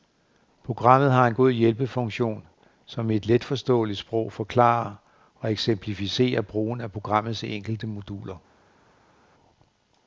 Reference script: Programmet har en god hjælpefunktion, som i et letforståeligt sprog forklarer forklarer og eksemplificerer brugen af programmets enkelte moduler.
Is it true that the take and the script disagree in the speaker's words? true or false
true